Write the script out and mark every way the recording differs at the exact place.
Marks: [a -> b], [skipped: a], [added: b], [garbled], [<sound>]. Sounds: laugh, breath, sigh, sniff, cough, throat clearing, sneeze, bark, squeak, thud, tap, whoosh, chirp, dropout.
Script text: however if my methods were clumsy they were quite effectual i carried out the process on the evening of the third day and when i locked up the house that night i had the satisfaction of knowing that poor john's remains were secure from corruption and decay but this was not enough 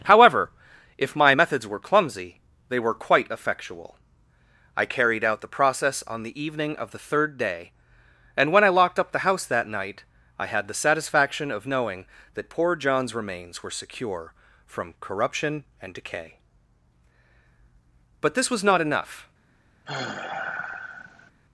however if my methods were clumsy they were quite effectual i carried out the process on the evening of the third day and when i locked up the house that night i had the satisfaction of knowing that poor john's remains were secure from corruption and decay but this was not enough [sigh]